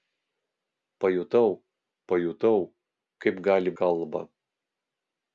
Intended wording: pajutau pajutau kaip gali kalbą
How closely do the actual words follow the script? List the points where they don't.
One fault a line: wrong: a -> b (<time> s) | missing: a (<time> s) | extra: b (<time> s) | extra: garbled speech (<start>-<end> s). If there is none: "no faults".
no faults